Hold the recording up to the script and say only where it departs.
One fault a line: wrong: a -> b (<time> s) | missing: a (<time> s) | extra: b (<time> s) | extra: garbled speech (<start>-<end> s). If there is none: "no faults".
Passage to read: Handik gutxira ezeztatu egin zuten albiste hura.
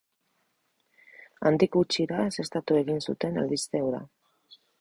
no faults